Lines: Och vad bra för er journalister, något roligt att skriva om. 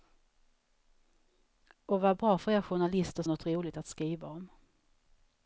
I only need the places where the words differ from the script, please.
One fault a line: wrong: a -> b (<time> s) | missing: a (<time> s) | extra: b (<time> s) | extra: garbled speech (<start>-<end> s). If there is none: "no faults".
no faults